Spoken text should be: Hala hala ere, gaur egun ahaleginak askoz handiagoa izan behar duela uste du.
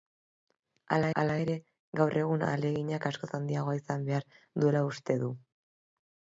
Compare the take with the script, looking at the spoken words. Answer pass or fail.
pass